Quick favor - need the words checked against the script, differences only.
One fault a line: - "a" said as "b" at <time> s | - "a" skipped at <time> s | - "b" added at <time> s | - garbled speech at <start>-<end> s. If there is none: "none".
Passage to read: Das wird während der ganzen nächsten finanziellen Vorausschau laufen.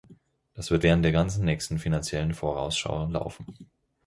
none